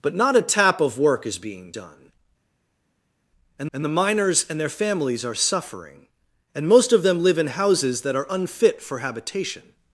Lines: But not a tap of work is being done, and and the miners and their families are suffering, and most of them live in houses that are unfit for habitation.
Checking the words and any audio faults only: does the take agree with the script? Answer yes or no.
yes